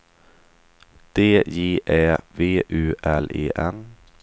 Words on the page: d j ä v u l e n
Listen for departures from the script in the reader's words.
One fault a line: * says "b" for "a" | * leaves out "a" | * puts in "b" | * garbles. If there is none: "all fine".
all fine